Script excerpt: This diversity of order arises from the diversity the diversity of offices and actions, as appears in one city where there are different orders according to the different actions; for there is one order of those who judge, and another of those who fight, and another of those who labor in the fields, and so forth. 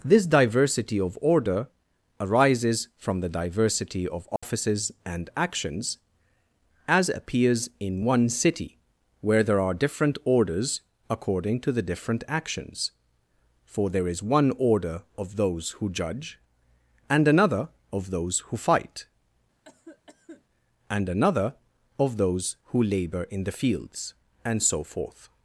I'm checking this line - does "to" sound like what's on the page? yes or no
yes